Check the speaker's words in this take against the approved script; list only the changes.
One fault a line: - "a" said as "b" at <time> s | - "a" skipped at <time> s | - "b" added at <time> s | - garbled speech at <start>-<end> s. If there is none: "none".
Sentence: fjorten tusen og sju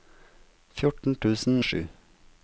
none